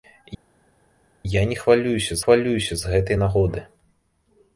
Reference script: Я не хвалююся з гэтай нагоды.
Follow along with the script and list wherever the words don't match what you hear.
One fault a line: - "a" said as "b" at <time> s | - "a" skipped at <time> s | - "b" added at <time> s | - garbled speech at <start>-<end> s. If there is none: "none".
- "хвалююся" added at 2.2 s